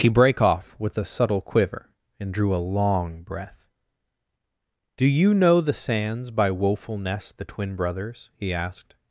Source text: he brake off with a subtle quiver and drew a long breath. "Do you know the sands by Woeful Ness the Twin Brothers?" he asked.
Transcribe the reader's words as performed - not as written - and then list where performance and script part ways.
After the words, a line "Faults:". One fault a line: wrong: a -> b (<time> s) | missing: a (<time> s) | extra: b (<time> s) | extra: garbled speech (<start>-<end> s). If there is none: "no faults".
he brake off with a subtle quiver and drew a long breath. "Do you know the sands by Woeful Ness the Twin Brothers?" he asked.
Faults:
no faults